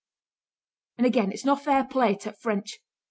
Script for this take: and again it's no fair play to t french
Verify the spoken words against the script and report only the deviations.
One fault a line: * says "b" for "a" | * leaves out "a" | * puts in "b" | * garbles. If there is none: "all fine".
all fine